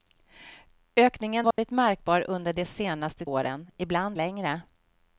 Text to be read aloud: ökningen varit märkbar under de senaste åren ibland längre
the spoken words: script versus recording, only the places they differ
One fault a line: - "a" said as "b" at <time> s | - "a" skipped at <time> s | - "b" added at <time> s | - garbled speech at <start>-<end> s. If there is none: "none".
none